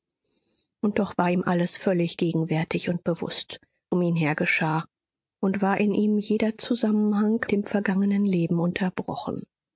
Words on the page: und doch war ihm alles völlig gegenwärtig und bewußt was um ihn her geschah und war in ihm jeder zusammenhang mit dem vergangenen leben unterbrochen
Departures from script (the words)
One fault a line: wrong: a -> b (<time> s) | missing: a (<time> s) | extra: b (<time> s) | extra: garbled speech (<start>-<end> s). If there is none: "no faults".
missing: was (3.6 s)
missing: mit (7.4 s)